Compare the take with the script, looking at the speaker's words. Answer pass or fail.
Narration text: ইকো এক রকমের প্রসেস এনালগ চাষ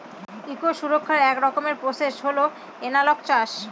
fail